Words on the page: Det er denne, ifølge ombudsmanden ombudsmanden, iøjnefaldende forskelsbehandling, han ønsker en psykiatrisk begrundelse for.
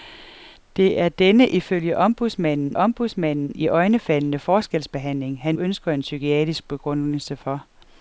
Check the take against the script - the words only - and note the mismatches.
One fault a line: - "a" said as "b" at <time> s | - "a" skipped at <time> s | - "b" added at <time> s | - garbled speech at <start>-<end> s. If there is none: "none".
none